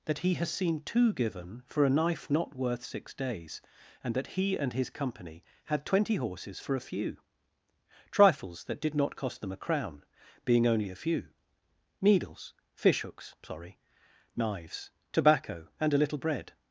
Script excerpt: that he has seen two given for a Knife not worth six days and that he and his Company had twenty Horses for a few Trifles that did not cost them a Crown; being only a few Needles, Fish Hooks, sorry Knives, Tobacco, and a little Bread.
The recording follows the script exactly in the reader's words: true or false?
true